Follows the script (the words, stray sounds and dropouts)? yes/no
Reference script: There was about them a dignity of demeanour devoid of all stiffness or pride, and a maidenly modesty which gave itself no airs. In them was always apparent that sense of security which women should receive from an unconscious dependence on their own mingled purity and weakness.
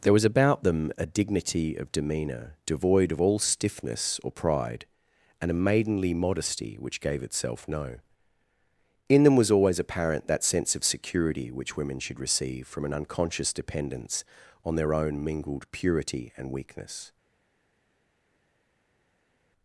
no